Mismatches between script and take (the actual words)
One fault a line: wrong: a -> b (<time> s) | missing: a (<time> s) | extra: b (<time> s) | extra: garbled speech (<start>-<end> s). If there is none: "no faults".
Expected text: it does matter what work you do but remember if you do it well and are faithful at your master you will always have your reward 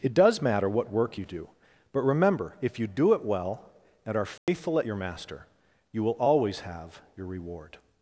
no faults